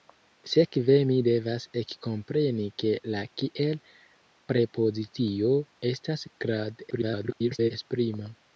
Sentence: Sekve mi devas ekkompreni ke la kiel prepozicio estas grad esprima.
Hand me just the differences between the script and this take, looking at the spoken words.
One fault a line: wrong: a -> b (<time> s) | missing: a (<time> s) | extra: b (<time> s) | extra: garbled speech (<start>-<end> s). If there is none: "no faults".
extra: garbled speech (6.9-7.7 s)